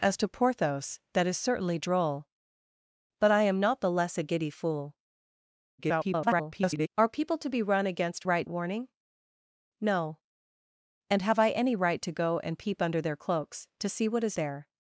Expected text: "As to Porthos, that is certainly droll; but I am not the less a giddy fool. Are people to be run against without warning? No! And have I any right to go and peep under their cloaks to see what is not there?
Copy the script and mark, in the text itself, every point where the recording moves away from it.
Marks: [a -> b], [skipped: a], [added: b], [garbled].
"As to Porthos, that is certainly droll; but I am not the less a giddy fool. [garbled] Are people to be run against [without -> right] warning? No! And have I any right to go and peep under their cloaks to see what is [skipped: not] there?